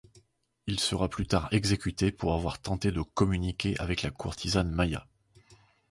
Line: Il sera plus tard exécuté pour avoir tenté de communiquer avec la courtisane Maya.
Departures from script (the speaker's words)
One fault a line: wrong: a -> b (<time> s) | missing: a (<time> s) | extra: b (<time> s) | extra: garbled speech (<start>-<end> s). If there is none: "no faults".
no faults